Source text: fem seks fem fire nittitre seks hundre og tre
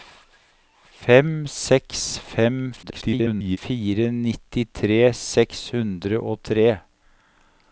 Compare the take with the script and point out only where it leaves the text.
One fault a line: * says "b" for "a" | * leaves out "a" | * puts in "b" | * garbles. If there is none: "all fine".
* garbles